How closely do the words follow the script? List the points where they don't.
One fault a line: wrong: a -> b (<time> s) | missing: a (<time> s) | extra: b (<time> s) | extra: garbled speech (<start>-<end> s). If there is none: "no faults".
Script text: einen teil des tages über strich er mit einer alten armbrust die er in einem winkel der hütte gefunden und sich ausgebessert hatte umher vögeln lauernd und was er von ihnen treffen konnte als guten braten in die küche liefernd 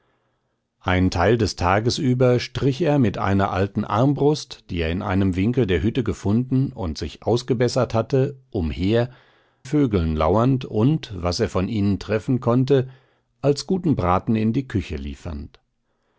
no faults